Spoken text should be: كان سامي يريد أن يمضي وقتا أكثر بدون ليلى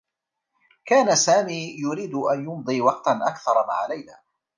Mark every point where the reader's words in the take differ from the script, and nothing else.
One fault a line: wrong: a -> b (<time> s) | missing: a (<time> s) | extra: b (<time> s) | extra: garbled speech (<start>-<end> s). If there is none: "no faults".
wrong: بدون -> مع (3.7 s)